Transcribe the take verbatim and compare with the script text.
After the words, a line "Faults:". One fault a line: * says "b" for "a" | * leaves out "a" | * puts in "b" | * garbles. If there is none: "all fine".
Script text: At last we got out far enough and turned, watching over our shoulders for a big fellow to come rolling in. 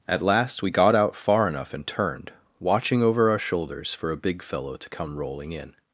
At last we got out far enough and turned, watching over our shoulders for a big fellow to come rolling in.
Faults:
all fine